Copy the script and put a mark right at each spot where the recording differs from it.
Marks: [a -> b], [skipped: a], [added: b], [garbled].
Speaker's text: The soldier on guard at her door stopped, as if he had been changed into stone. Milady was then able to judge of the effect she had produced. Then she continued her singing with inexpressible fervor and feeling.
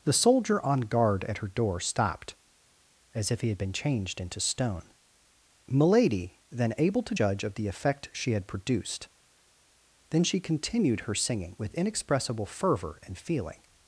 The soldier on guard at her door stopped, as if he had been changed into stone. Milady [skipped: was] then able to judge of the effect she had produced. Then she continued her singing with inexpressible fervor and feeling.